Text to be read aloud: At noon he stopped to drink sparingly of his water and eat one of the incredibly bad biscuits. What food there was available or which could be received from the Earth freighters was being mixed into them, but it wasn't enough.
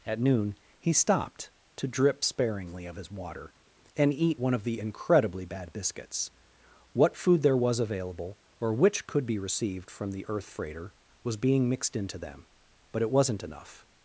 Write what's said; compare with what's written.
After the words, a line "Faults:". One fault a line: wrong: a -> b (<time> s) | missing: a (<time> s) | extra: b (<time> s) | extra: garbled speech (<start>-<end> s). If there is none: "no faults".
At noon he stopped to drip sparingly of his water and eat one of the incredibly bad biscuits. What food there was available or which could be received from the Earth freighter was being mixed into them, but it wasn't enough.
Faults:
wrong: drink -> drip (1.9 s)
wrong: freighters -> freighter (10.5 s)